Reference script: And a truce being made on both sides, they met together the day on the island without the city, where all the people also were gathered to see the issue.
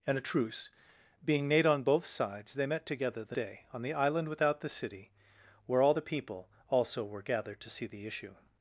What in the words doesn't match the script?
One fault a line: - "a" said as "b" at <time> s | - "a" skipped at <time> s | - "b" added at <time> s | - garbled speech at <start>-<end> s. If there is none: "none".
none